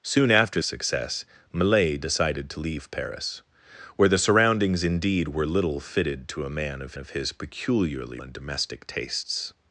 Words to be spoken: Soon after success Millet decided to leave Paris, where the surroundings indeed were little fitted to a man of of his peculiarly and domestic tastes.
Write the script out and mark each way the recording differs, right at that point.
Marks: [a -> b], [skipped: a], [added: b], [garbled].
Soon after success Millet decided to leave Paris, where the surroundings indeed were little fitted to a man of of his peculiarly and domestic tastes.